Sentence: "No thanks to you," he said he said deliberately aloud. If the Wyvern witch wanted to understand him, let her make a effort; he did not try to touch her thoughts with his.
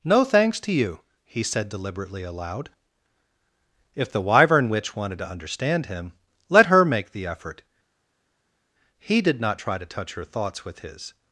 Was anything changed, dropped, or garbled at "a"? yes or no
yes